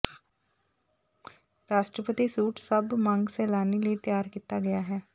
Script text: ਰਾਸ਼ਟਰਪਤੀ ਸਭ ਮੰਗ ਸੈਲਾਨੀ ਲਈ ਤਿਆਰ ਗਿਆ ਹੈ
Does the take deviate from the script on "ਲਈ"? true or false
false